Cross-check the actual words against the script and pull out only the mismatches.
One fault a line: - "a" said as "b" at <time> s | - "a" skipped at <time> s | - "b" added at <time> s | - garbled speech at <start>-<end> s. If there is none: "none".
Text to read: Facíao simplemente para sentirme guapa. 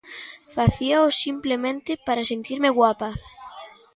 none